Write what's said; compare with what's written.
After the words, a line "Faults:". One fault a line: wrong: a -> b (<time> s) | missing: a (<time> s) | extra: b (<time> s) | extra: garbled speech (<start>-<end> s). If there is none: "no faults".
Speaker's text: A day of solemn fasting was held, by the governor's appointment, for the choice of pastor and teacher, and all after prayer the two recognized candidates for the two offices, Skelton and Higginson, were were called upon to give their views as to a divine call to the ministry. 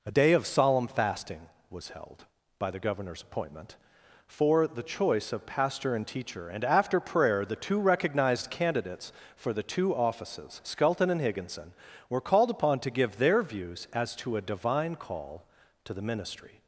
A day of solemn fasting was held, by the governor's appointment, for the choice of pastor and teacher, and after prayer the two recognized candidates for the two offices, Skelton and Higginson, were called upon to give their views as to a divine call to the ministry.
Faults:
missing: all (6.6 s)
missing: were (12.2 s)